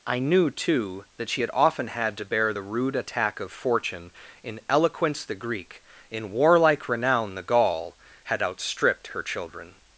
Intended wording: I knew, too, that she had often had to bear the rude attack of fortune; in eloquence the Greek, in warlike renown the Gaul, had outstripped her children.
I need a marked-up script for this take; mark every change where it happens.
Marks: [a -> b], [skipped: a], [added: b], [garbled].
I knew, too, that she had often had to bear the rude attack of fortune; in eloquence the Greek, in warlike renown the Gaul, had outstripped her children.